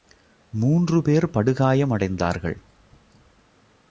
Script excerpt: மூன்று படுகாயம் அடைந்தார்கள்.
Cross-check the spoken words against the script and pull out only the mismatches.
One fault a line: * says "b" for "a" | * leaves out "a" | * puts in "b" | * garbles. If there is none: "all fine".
* puts in "பேர்"